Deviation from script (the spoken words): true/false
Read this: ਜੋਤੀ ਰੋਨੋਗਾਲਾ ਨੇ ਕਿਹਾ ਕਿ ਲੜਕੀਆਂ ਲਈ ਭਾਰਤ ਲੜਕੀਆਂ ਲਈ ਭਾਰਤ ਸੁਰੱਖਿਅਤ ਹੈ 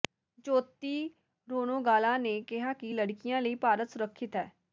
true